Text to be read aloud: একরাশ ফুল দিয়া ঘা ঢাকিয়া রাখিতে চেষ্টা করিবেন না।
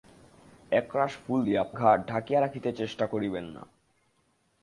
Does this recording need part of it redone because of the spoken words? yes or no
no